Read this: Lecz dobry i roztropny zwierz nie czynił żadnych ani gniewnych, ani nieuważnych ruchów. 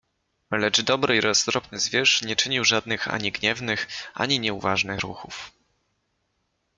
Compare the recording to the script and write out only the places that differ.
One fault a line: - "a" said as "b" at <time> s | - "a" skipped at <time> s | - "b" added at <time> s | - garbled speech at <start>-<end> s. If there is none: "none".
none